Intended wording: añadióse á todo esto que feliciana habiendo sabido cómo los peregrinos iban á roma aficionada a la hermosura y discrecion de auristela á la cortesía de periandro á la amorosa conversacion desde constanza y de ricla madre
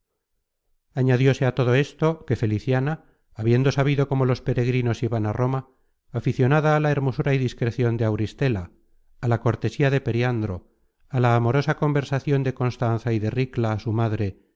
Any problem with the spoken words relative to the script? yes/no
yes